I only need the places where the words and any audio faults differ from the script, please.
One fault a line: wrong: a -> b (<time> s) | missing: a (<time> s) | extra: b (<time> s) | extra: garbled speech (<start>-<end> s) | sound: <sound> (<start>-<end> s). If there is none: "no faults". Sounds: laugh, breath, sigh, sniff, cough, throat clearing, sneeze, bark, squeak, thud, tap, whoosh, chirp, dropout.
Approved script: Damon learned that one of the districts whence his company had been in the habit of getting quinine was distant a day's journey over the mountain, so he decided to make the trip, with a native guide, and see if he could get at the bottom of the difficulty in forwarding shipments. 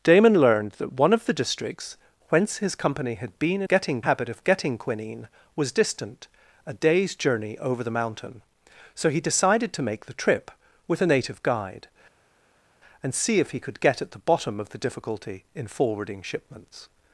wrong: the -> getting (3.7 s)